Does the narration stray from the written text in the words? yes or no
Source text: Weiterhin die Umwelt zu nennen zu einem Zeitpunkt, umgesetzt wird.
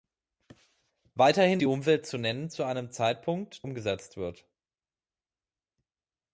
no